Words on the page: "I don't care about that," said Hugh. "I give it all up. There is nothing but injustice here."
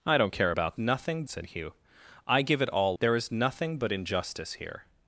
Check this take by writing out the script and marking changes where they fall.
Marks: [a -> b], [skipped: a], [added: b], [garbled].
"I don't care about [that," -> nothing] said Hugh. "I give it all [skipped: up.] There is nothing but injustice here."